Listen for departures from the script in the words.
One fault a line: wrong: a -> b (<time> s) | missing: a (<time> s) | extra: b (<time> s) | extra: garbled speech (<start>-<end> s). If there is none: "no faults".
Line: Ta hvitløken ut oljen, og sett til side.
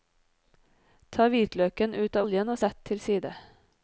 no faults